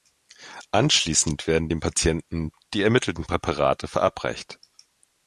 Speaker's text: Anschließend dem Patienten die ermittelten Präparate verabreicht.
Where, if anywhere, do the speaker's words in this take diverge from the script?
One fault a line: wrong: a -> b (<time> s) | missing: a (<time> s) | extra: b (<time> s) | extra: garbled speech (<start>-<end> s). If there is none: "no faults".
extra: werden (1.4 s)